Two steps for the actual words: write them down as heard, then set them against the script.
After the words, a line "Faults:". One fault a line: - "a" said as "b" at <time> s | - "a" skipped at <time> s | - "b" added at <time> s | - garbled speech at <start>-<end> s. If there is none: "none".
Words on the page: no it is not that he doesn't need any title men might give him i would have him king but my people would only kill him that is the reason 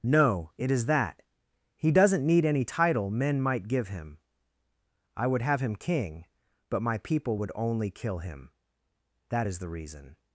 no it is that he doesn't need any title men might give him i would have him king but my people would only kill him that is the reason
Faults:
- "not" skipped at 0.8 s